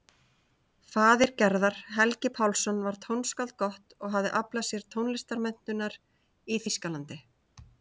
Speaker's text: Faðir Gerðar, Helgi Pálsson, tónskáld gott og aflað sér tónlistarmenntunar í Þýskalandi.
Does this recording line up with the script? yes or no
no